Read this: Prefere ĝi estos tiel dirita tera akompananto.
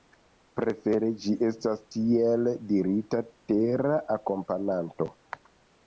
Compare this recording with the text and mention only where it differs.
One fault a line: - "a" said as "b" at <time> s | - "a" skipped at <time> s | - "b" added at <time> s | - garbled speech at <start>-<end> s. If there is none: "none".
- "estos" said as "estas" at 1.5 s